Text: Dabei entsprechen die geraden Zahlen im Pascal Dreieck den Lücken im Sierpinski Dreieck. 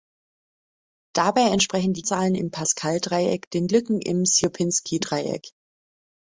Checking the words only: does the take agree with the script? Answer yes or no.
no